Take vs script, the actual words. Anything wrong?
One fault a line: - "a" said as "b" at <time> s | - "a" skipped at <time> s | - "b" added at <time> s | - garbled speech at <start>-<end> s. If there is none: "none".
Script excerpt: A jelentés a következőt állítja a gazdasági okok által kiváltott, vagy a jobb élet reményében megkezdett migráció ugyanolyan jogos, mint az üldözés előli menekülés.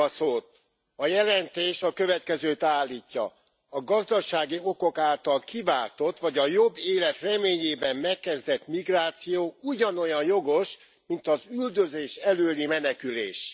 none